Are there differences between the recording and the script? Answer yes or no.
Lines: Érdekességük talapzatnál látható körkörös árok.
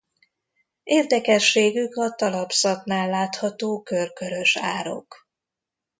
yes